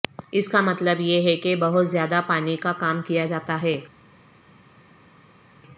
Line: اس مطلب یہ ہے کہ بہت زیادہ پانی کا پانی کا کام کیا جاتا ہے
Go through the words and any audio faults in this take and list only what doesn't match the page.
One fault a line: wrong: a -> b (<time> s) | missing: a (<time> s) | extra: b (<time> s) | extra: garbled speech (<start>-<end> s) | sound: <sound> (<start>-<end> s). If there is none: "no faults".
extra: کا (0.5 s)
missing: پانی کا (2.7 s)